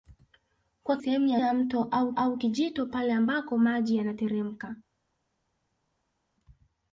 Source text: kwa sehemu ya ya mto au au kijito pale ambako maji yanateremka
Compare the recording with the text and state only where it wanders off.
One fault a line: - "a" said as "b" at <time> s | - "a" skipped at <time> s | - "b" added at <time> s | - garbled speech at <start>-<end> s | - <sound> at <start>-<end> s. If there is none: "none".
none